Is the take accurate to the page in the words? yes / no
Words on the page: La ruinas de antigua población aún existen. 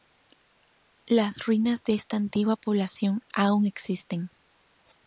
no